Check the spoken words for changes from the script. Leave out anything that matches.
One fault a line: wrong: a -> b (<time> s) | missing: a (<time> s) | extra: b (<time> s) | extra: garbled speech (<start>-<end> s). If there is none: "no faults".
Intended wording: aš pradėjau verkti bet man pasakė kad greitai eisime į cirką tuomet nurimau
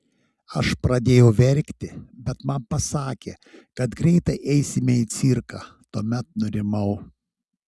no faults